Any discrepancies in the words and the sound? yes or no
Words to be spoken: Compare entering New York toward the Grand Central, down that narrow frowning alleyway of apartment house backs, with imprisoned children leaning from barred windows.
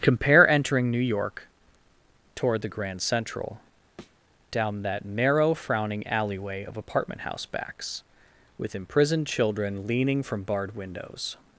yes